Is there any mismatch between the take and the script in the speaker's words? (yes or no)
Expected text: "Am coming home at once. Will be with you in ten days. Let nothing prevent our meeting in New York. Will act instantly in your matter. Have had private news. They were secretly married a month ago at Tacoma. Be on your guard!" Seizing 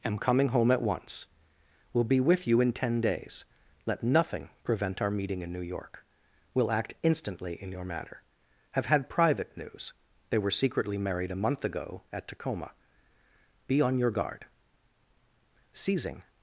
no